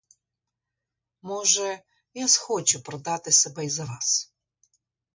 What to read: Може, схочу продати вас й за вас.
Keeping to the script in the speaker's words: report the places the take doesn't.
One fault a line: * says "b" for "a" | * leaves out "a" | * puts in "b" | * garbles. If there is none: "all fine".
* puts in "я"
* says "себе" for "вас"